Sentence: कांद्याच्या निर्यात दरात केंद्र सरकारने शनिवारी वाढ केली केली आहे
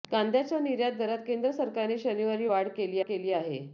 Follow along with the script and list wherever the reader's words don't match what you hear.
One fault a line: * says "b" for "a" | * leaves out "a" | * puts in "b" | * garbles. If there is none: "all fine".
all fine